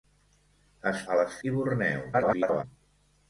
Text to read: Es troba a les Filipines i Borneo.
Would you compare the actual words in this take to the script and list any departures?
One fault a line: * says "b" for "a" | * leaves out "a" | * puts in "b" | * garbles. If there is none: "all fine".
* leaves out "troba"
* leaves out "Filipines"
* garbles